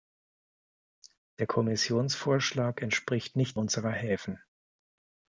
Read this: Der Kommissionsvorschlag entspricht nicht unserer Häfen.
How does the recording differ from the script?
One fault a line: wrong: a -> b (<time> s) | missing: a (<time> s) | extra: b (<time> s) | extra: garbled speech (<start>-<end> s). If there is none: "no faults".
no faults